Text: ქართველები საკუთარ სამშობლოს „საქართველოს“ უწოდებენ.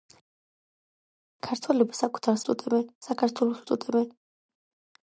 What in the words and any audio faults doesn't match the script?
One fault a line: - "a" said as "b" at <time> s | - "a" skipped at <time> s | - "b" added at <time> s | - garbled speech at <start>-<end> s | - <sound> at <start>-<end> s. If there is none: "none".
- "სამშობლოს" said as "უწოდებენ" at 2.4 s